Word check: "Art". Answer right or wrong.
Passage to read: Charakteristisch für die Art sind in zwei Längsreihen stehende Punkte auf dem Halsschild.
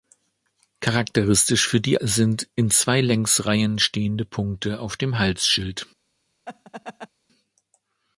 wrong